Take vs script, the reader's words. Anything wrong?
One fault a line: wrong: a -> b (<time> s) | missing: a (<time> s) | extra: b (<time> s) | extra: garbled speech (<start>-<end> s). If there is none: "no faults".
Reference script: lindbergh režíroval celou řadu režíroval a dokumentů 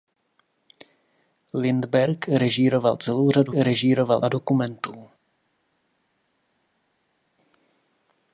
no faults